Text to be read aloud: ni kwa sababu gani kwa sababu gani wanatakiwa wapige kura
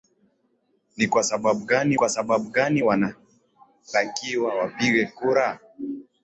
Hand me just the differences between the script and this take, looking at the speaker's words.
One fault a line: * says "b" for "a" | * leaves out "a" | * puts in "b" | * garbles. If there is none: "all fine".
all fine